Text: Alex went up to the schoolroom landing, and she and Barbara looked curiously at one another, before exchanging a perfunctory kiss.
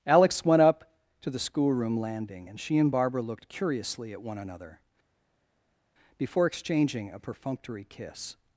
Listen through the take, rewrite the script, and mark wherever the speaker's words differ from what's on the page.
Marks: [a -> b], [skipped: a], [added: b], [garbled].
Alex went up to the schoolroom landing, and she and Barbara looked curiously at one another, before exchanging a perfunctory kiss.